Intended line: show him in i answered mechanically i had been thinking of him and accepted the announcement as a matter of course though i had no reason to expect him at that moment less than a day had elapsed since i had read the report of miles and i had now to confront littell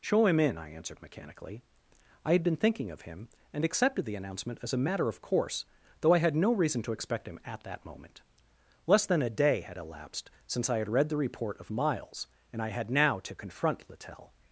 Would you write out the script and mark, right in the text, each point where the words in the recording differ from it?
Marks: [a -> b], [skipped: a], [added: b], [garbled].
show him in i answered mechanically i had been thinking of him and accepted the announcement as a matter of course though i had no reason to expect him at that moment less than a day had elapsed since i had read the report of miles and i had now to confront littell